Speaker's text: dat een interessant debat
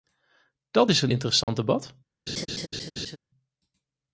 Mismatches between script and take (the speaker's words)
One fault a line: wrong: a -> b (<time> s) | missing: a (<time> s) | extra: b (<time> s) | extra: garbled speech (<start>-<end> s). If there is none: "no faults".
extra: is (0.9 s)